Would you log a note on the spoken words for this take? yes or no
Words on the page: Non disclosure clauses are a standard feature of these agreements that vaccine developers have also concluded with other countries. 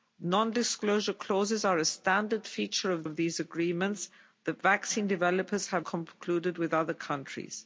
yes